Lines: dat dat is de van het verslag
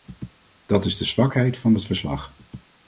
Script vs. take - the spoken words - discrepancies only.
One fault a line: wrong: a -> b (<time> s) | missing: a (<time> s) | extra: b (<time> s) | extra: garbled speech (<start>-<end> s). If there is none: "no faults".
missing: dat (0.8 s)
extra: zwakheid (1.1 s)